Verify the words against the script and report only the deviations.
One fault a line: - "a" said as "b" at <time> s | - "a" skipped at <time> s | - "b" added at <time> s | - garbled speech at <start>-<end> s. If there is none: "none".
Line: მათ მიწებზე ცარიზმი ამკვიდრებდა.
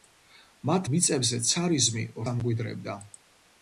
none